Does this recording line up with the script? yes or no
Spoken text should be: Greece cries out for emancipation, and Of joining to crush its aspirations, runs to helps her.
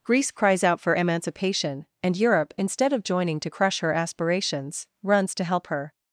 no